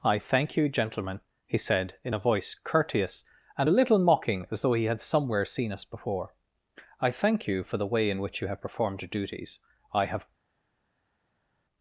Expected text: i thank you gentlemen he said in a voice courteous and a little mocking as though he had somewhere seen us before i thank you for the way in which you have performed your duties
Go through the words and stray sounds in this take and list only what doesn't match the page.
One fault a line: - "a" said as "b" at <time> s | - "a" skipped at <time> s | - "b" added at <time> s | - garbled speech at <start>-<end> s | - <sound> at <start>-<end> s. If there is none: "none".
- "i have" added at 9.9 s